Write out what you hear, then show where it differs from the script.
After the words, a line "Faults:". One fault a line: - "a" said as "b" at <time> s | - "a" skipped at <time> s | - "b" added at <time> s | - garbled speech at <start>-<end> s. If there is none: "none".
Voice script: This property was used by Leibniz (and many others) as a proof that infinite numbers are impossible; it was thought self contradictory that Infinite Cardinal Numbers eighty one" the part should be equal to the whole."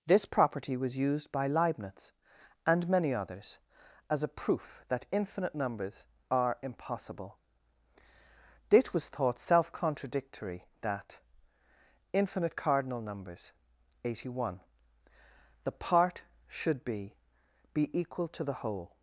This property was used by Leibniz (and many others) as a proof that infinite numbers are impossible; it was thought self contradictory that Infinite Cardinal Numbers eighty one" the part should be be equal to the whole."
Faults:
- "be" added at 17.7 s